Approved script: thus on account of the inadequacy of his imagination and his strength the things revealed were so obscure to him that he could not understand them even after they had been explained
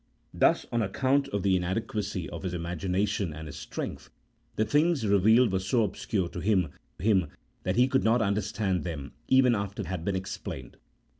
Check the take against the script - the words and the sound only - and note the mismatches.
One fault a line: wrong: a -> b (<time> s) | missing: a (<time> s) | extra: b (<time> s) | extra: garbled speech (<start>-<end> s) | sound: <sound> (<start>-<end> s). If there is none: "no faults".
extra: him (7.0 s)
missing: they (9.8 s)